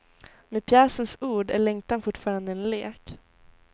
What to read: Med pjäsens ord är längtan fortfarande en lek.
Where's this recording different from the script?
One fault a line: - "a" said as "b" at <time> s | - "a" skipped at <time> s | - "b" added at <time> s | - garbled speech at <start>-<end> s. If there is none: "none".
none